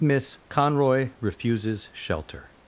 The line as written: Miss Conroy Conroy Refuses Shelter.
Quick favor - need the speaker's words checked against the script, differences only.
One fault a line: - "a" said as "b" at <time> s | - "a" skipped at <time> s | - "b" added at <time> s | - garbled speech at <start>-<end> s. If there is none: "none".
- "Conroy" skipped at 1.1 s